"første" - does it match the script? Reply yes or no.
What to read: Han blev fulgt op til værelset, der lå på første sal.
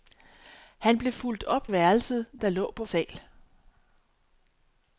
no